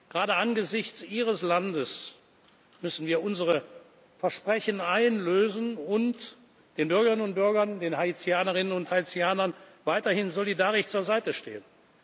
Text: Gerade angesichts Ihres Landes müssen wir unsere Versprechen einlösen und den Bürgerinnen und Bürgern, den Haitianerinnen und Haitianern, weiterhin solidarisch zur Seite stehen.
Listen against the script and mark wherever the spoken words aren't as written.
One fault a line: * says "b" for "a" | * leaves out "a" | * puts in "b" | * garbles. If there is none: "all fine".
all fine